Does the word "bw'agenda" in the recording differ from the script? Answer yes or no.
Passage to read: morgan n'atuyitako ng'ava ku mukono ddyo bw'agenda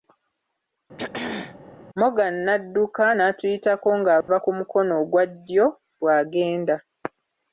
no